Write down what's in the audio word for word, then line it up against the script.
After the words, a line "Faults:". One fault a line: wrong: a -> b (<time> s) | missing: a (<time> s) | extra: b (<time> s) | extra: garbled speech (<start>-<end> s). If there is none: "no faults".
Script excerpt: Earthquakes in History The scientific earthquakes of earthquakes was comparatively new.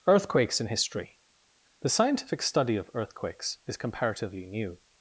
Earthquakes in History The scientific study of earthquakes is comparatively new.
Faults:
wrong: earthquakes -> study (2.4 s)
wrong: was -> is (3.6 s)